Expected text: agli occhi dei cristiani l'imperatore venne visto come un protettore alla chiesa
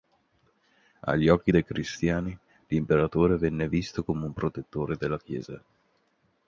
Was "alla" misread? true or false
true